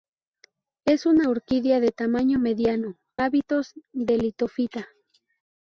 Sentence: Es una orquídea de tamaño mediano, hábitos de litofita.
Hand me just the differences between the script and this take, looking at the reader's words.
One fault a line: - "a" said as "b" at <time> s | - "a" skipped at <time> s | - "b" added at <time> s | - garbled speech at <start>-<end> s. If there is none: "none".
none